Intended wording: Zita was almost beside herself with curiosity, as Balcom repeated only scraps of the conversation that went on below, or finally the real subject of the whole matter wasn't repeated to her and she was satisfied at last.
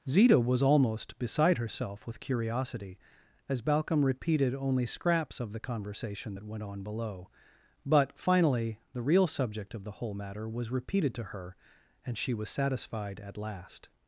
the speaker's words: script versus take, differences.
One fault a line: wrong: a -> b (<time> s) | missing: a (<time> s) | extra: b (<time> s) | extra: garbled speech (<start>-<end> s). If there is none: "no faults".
wrong: or -> but (7.8 s)
wrong: wasn't -> was (10.5 s)